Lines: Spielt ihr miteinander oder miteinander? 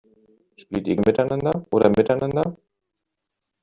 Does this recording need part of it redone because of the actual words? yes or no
no